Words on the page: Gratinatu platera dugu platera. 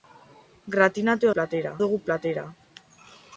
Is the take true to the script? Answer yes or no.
yes